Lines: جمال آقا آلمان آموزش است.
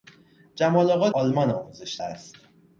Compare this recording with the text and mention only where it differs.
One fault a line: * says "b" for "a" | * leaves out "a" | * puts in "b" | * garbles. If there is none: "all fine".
all fine